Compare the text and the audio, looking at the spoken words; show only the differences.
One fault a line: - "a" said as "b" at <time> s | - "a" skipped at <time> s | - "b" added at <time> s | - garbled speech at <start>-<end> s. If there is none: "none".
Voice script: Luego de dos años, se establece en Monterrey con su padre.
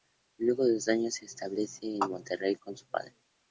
none